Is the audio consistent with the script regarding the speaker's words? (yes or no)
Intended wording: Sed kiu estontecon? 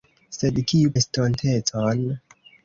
yes